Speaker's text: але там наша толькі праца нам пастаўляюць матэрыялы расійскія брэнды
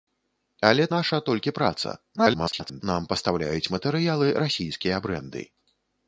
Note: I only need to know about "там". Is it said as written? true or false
false